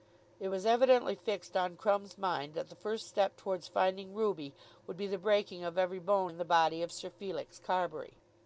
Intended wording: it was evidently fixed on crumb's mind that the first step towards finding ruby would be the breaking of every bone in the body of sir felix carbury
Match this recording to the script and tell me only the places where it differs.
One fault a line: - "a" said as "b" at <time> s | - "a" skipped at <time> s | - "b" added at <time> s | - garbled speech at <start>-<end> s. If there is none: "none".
none